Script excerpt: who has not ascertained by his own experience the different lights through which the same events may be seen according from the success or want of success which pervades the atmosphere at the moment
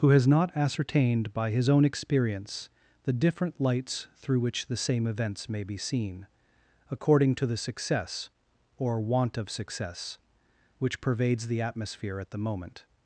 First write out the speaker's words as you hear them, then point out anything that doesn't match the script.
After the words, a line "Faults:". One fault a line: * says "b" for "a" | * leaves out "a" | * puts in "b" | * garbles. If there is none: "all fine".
who has not ascertained by his own experience the different lights through which the same events may be seen according to the success or want of success which pervades the atmosphere at the moment
Faults:
* says "to" for "from"